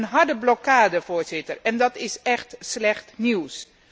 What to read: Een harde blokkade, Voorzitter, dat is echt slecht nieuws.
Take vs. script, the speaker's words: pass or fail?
fail